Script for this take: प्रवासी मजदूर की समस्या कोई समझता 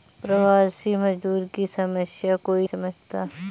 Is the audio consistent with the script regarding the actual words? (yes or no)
yes